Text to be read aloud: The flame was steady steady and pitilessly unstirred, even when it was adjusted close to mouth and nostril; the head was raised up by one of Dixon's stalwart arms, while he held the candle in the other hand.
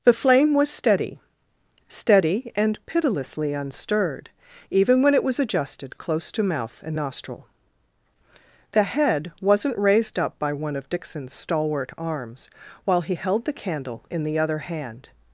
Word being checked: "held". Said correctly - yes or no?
yes